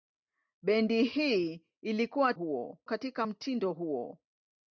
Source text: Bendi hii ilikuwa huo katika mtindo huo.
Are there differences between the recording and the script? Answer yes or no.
no